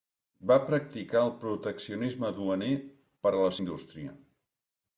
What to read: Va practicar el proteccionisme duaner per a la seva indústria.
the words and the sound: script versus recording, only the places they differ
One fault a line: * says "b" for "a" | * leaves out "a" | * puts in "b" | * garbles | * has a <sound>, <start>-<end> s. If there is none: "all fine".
* leaves out "seva"